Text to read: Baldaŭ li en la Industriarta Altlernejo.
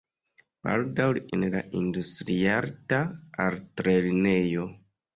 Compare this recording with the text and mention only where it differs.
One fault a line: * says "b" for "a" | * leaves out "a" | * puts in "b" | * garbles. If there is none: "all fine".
all fine